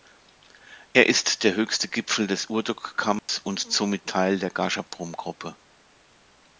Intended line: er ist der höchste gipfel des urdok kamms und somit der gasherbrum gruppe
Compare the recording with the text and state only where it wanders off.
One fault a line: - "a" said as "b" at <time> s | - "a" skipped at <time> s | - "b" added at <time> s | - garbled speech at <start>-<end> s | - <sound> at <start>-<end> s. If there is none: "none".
- dropout at 3.2-3.3 s
- "teil" added at 4.1 s